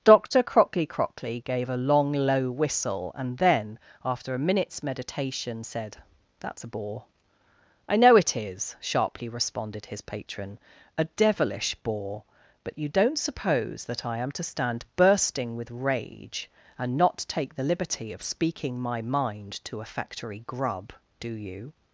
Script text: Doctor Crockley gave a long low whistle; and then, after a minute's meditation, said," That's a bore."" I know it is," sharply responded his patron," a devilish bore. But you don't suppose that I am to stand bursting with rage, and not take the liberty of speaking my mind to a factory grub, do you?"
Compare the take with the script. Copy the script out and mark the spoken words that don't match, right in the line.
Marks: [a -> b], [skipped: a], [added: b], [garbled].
Doctor Crockley [added: Crockley] gave a long low whistle; and then, after a minute's meditation, said," That's a bore."" I know it is," sharply responded his patron," a devilish bore. But you don't suppose that I am to stand bursting with rage, and not take the liberty of speaking my mind to a factory grub, do you?"